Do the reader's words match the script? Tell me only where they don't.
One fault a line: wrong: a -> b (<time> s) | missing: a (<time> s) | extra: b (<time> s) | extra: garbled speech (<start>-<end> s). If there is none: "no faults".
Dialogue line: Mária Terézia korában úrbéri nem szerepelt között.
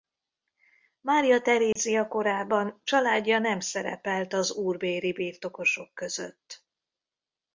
wrong: úrbéri -> családja (2.8 s)
extra: az úrbéri birtokosok (4.3 s)